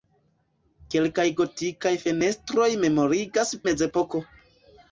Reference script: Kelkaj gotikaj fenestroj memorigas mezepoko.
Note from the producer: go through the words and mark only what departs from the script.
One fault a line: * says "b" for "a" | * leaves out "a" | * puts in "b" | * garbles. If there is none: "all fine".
all fine